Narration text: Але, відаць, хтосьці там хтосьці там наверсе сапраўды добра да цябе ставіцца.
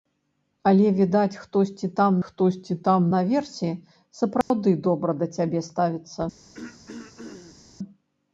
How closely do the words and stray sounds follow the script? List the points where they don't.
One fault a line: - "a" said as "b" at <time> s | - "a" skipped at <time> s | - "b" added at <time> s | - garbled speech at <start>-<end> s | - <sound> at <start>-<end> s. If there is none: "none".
- dropout at 4.4-4.5 s
- throat clearing at 6.5-7.6 s